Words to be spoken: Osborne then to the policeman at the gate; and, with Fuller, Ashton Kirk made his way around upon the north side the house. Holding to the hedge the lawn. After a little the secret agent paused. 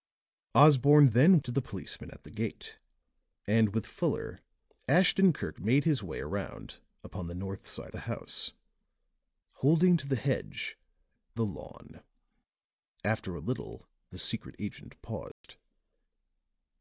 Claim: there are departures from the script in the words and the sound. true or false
true